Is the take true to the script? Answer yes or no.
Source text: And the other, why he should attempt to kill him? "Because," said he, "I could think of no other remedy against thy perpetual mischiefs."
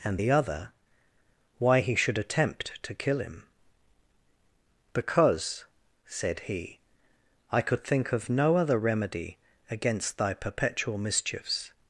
yes